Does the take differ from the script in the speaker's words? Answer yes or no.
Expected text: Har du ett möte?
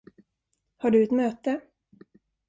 no